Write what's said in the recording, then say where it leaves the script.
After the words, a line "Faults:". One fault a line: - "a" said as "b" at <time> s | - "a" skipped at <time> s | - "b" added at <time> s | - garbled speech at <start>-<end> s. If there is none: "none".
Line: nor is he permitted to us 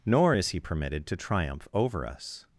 nor is he permitted to triumph over us
Faults:
- "triumph over" added at 1.2 s